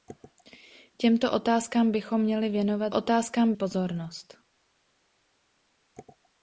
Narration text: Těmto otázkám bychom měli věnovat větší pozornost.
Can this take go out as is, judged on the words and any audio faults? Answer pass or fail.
fail